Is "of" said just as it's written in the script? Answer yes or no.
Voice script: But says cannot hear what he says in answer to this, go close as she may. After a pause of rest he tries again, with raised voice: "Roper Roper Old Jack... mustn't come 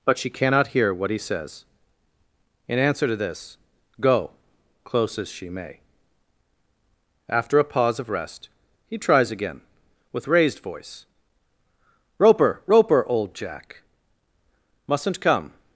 yes